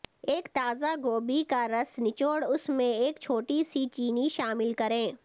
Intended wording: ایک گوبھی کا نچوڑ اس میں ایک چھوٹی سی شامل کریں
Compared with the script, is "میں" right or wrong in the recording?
right